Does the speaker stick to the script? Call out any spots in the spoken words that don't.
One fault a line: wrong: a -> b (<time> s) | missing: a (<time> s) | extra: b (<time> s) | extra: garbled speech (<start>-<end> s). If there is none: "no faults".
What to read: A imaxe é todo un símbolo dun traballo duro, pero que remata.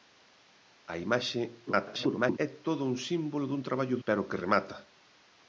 extra: garbled speech (1.7-2.4 s)
missing: duro (4.0 s)